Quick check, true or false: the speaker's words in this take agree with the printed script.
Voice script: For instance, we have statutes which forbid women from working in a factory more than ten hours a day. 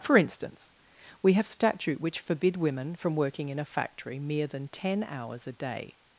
false